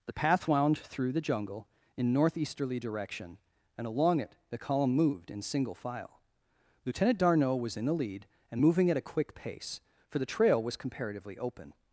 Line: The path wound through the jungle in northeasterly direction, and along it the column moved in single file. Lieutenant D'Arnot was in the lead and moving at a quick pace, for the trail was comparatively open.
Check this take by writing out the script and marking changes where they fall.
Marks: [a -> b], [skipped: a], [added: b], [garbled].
The path wound through the jungle in northeasterly direction, and along it the column moved in single file. Lieutenant D'Arnot was in the lead and moving at a quick pace, for the trail was comparatively open.